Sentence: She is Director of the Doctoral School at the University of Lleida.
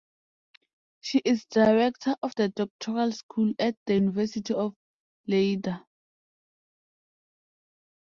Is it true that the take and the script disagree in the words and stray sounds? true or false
false